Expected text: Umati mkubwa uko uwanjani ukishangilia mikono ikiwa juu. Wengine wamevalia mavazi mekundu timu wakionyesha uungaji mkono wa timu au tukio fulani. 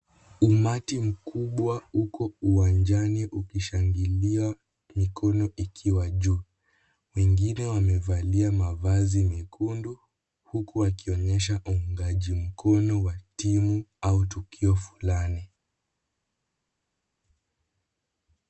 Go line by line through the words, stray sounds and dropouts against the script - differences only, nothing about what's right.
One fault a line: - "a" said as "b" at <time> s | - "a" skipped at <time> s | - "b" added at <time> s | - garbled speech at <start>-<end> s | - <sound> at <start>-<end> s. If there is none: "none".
- "timu" said as "huku" at 10.4 s